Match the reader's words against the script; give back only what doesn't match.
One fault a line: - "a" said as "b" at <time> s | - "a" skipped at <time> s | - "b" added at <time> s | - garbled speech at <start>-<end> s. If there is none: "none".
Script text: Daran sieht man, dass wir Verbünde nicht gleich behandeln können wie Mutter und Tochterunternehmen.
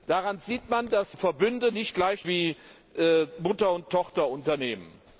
- "wir" skipped at 1.1 s
- "behandeln können" skipped at 2.2 s